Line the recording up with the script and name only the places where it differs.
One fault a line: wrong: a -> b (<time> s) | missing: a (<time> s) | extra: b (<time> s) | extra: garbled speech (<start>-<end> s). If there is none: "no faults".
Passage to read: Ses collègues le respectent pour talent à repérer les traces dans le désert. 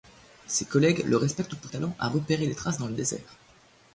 no faults